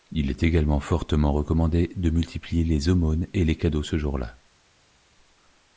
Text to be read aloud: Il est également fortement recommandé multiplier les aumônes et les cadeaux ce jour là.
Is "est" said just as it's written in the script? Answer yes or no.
yes